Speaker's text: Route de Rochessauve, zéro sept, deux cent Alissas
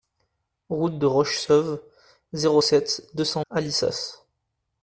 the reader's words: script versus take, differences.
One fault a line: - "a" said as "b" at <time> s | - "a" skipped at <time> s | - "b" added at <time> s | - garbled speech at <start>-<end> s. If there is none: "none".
none